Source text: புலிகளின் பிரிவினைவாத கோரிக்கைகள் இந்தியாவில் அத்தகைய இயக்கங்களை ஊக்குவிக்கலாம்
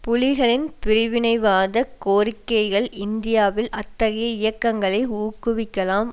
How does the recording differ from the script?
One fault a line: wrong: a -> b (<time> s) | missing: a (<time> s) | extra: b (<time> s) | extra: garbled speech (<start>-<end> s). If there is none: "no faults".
no faults